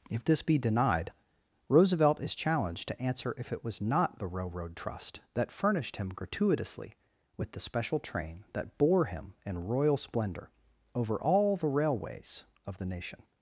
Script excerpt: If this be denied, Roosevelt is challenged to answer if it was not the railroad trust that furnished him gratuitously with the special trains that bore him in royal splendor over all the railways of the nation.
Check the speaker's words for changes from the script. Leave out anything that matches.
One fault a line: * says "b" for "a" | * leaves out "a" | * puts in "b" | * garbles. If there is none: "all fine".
* says "train" for "trains"